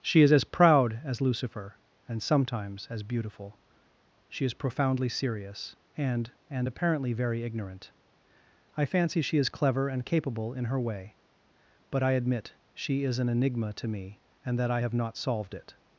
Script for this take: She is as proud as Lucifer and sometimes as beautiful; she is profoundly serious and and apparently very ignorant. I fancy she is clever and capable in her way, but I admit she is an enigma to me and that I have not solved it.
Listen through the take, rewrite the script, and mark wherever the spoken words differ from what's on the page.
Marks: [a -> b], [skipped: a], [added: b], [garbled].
She is as proud as Lucifer and sometimes as beautiful; she is profoundly serious and and apparently very ignorant. I fancy she is clever and capable in her way, but I admit she is an enigma to me and that I have not solved it.